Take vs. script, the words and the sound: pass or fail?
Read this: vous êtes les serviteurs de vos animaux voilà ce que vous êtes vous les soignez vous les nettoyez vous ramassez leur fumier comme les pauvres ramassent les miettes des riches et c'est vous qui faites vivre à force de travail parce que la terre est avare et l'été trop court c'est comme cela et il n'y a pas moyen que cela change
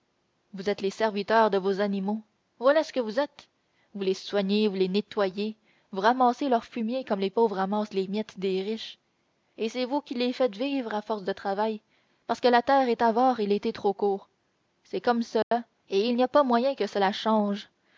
fail